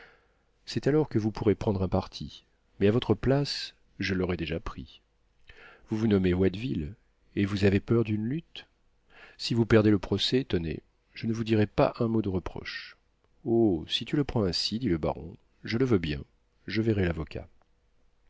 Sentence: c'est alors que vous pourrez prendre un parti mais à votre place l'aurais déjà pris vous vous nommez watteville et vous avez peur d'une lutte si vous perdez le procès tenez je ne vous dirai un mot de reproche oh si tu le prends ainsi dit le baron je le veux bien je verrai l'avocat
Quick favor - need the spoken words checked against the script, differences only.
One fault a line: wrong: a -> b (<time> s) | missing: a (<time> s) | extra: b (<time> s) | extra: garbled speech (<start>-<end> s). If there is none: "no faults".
extra: je (4.0 s)
extra: pas (11.7 s)